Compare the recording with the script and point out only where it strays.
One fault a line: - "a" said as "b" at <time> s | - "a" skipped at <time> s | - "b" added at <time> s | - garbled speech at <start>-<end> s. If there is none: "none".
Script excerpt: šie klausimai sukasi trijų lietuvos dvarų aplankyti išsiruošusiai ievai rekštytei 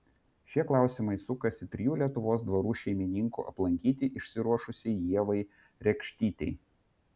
- "šeimininkų" added at 2.8 s